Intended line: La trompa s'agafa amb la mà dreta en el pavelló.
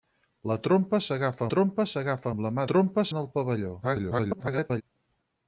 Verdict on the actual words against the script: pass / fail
fail